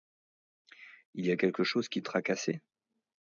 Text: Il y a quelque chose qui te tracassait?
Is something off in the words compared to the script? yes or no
yes